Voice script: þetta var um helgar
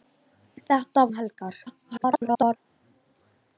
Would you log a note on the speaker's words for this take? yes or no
yes